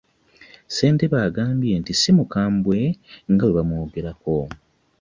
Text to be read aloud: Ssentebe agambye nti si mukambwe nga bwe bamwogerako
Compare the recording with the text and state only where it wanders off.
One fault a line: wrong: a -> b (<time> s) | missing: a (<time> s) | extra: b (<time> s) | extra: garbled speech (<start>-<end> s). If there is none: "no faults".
no faults